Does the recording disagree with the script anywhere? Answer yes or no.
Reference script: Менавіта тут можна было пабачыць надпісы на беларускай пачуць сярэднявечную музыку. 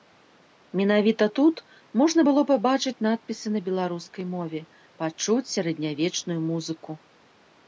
yes